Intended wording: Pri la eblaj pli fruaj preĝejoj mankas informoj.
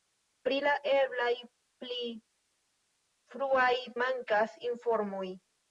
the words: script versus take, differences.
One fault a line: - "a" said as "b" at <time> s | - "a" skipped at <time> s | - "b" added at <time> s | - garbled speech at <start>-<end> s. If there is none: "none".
- "preĝejoj" skipped at 3.7 s